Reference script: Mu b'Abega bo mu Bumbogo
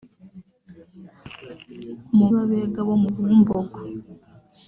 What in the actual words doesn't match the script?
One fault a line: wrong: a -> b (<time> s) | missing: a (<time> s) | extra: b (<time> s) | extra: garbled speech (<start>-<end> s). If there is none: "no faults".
no faults